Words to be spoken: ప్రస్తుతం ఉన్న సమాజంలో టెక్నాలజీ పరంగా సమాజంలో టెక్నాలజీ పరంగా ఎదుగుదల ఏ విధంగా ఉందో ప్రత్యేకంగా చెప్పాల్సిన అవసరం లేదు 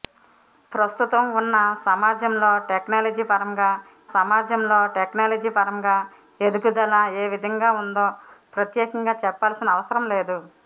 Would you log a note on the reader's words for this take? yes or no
no